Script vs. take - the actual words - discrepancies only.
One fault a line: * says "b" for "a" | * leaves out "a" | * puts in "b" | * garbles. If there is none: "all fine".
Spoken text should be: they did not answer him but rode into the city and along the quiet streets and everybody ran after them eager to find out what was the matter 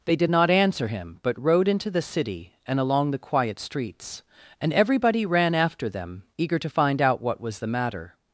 all fine